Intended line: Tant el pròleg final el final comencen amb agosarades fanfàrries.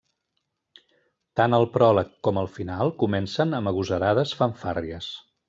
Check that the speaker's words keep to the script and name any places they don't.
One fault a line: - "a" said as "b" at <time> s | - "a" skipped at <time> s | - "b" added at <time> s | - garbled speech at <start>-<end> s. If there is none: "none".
- "final" said as "com" at 2.3 s